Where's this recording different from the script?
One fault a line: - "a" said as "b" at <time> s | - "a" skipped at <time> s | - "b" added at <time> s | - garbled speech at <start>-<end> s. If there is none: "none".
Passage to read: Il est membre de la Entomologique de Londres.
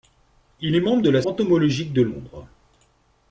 none